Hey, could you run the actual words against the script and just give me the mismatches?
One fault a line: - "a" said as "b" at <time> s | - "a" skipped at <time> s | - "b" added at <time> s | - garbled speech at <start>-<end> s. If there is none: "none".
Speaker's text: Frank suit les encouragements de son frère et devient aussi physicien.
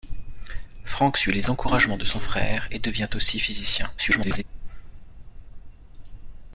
- garbled speech at 4.0-4.4 s